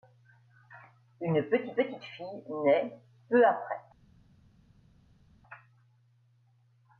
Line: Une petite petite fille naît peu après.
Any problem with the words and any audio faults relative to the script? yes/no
no